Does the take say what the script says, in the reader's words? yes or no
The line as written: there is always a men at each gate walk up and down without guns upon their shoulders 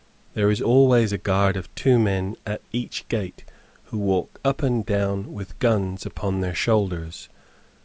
no